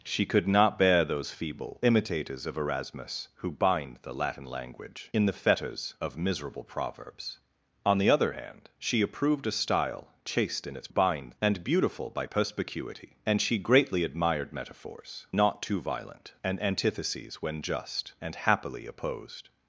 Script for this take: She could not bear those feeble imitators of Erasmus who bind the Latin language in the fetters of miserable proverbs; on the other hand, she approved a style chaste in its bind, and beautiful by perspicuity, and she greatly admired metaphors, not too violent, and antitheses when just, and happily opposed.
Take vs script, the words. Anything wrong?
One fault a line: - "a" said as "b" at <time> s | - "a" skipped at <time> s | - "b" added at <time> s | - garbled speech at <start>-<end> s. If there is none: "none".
none